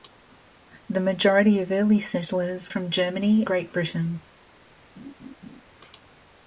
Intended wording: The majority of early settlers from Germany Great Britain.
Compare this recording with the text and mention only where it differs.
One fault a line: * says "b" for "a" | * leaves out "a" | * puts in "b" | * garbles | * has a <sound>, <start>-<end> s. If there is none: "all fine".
* has a laugh, 5.0-5.6 s